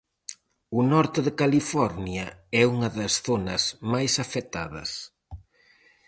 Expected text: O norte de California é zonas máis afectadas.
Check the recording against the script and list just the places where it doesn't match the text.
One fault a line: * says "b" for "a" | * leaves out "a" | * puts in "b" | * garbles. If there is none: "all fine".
* puts in "unha das"